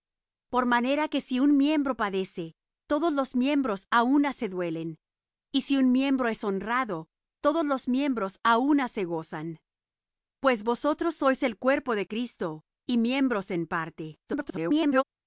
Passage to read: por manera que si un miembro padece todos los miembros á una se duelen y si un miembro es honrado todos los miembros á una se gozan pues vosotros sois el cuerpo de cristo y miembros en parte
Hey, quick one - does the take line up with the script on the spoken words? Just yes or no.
no